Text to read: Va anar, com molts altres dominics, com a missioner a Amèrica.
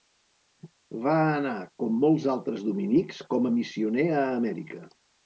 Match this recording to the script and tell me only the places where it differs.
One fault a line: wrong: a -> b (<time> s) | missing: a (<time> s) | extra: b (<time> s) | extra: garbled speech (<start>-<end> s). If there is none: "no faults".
no faults